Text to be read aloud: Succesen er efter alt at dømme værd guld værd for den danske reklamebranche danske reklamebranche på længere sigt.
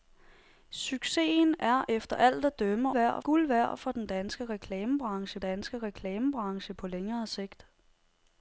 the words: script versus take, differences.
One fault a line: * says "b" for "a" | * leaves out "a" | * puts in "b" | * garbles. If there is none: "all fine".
all fine